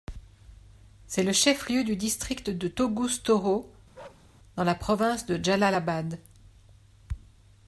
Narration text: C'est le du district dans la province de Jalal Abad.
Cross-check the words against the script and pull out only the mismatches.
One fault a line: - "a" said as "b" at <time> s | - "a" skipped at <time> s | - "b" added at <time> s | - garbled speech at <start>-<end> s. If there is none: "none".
- "chef lieu" added at 1.3 s
- "de Toguz Toro" added at 2.5 s